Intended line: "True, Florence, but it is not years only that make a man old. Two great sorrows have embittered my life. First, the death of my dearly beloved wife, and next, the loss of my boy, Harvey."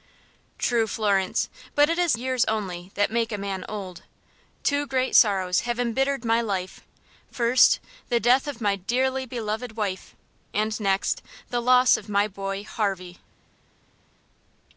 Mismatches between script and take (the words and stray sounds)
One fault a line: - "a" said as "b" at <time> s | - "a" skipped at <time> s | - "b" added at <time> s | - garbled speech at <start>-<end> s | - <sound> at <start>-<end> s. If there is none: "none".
- "not" skipped at 2.2 s